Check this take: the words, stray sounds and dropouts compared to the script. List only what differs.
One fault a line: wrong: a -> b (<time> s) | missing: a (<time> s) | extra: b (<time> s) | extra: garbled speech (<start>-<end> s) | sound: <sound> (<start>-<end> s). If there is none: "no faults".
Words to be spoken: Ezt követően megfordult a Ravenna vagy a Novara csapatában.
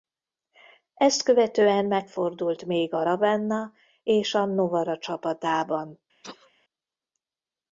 extra: még (2.6 s)
wrong: vagy -> és (4.0 s)
sound: sneeze (6.2-6.5 s)